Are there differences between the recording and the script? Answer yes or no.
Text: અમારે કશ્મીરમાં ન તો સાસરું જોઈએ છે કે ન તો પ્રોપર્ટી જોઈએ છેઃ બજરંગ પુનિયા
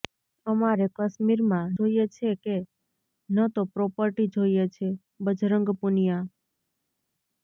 yes